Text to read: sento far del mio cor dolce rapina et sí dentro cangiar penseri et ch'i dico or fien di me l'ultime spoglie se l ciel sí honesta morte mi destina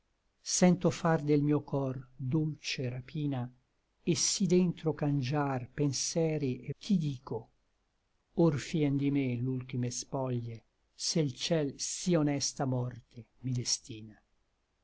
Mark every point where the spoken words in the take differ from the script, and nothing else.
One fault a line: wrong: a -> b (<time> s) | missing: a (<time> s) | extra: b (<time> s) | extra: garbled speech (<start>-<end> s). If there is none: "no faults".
no faults